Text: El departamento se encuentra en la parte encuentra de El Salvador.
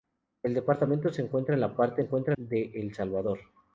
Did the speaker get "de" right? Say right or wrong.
right